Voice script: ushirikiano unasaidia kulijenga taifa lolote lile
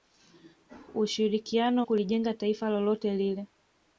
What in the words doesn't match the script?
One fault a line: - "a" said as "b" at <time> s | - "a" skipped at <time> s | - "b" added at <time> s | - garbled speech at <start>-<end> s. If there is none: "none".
- "unasaidia" skipped at 1.9 s